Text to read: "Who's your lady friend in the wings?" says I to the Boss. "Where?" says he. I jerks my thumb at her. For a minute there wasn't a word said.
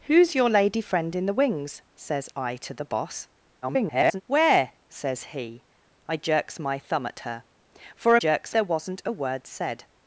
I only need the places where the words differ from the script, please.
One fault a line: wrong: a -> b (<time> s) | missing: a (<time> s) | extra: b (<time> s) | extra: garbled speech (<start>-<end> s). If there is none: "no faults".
extra: garbled speech (3.6-4.2 s)
wrong: minute -> jerks (8.1 s)